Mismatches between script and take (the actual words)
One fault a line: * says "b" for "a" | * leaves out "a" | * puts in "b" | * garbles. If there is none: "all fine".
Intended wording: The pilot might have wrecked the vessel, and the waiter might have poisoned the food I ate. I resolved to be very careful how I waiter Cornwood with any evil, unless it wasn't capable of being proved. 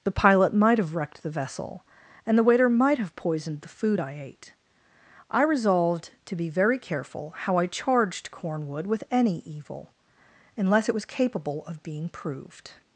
* says "charged" for "waiter"
* says "was" for "wasn't"